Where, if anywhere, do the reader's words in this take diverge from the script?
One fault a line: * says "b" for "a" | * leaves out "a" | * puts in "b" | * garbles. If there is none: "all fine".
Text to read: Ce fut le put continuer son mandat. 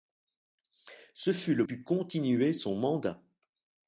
all fine